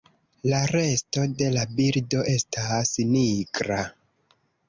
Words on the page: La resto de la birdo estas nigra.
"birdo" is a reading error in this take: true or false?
false